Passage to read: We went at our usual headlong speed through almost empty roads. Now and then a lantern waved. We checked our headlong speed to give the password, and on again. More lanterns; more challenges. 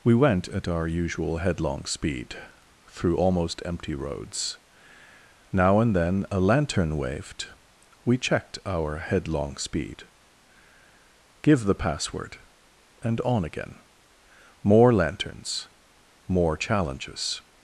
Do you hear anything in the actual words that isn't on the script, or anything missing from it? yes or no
yes